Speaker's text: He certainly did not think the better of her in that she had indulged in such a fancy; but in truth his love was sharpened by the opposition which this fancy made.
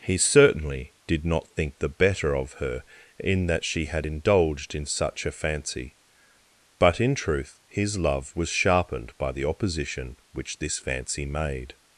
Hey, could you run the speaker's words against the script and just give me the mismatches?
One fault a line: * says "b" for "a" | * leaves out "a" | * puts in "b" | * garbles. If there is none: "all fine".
all fine